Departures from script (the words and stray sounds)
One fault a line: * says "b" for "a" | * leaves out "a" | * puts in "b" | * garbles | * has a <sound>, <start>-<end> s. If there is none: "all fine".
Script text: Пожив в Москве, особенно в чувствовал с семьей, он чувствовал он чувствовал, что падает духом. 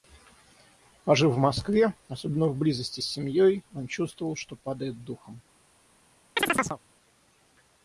* says "близости" for "чувствовал"
* leaves out "он чувствовал"
* has a chirp, 6.4-6.8 s